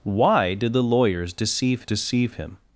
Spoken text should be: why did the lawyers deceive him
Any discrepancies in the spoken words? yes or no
yes